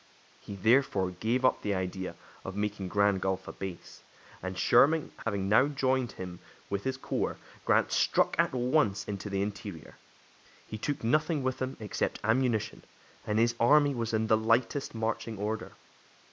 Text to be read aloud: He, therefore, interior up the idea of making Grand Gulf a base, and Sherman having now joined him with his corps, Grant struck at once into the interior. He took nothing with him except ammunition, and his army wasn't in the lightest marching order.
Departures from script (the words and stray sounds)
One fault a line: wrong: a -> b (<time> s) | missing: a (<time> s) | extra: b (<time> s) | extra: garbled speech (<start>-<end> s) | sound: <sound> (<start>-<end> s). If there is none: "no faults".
wrong: interior -> gave (1.1 s)
sound: dropout (5.2-5.3 s)
wrong: wasn't -> was (13.9 s)